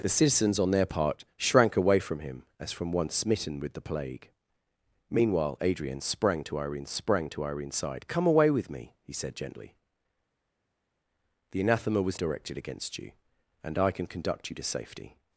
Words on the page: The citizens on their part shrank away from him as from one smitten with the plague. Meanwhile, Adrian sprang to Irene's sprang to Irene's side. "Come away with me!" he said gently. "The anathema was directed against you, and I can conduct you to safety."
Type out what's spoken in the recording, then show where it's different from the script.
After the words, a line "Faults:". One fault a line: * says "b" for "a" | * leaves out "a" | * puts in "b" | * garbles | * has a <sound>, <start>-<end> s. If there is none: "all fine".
The citizens on their part shrank away from him as from one smitten with the plague. Meanwhile, Adrian sprang to Irene's sprang to Irene's side. "Come away with me!" he said gently. "The anathema was directed against you, and I can conduct you to safety."
Faults:
all fine